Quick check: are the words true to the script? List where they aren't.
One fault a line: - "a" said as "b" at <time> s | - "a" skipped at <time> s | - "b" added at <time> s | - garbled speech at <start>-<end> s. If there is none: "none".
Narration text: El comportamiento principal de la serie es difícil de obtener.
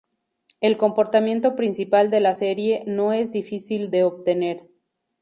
- "no" added at 2.9 s